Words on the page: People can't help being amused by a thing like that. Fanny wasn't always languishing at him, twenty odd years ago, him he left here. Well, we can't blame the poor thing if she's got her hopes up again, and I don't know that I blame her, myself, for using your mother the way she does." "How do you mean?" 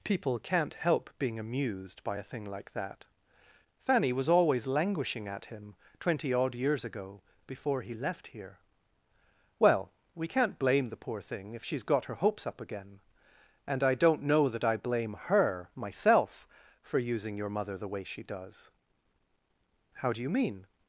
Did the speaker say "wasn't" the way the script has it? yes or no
no